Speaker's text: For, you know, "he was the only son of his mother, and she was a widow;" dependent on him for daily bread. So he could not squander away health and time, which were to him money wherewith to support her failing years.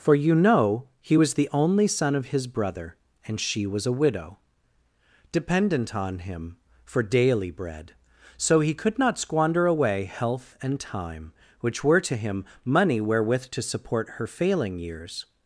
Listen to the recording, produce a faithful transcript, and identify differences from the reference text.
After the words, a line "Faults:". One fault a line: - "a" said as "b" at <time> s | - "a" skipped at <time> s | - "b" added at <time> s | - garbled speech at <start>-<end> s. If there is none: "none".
For, you know, "he was the only son of his brother, and she was a widow;" dependent on him for daily bread. So he could not squander away health and time, which were to him money wherewith to support her failing years.
Faults:
- "mother" said as "brother" at 2.5 s